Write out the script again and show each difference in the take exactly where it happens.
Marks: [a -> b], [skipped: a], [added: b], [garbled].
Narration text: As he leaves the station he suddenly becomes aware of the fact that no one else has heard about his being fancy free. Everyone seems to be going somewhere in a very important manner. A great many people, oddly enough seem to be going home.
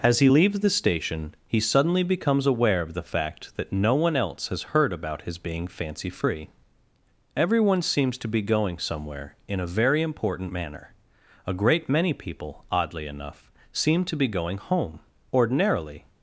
As he leaves the station he suddenly becomes aware of the fact that no one else has heard about his being fancy free. Everyone seems to be going somewhere in a very important manner. A great many people, oddly enough seem to be going home. [added: Ordinarily]